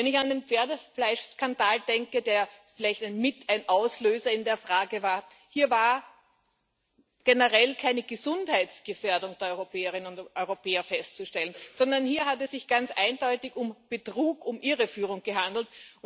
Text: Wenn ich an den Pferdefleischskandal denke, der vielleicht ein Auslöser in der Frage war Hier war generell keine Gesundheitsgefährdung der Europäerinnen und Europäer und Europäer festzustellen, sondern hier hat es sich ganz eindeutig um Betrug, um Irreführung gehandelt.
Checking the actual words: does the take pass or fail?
fail